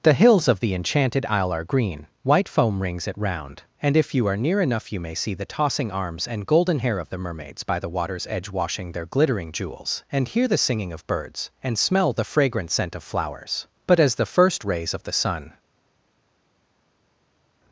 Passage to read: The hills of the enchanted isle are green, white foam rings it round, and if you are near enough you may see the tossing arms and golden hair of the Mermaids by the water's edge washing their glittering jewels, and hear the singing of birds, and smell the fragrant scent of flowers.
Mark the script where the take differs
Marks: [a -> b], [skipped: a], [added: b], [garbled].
The hills of the enchanted isle are green, white foam rings it round, and if you are near enough you may see the tossing arms and golden hair of the Mermaids by the water's edge washing their glittering jewels, and hear the singing of birds, and smell the fragrant scent of flowers. [added: But as the first rays of the sun]